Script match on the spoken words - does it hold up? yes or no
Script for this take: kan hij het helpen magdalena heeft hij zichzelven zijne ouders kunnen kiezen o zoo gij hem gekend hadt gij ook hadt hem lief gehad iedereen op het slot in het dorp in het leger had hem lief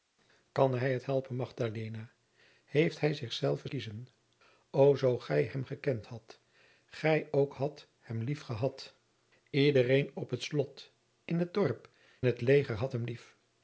no